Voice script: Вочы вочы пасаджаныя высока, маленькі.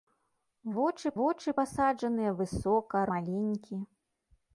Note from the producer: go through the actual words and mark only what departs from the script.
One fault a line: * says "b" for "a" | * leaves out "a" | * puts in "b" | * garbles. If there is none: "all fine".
all fine